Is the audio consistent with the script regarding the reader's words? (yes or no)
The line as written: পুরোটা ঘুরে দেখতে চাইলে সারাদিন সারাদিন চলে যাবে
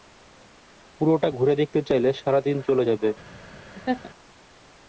no